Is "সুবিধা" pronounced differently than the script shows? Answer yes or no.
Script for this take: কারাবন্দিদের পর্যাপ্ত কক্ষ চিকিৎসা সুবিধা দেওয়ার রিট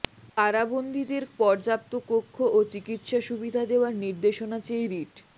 no